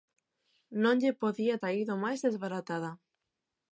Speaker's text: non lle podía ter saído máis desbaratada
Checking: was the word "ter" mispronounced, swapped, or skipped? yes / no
yes